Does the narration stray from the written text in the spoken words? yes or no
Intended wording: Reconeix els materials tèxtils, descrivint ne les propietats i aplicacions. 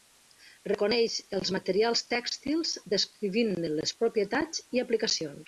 no